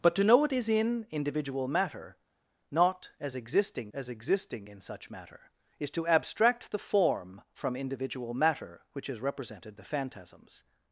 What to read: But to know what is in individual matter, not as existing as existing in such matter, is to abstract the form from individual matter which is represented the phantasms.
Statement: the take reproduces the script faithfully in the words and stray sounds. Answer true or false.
true